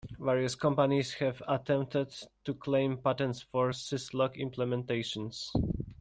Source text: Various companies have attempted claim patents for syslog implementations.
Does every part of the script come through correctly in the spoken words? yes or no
no